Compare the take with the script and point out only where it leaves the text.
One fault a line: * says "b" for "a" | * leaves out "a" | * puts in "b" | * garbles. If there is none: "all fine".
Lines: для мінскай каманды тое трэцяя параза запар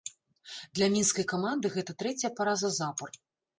* says "гэта" for "тое"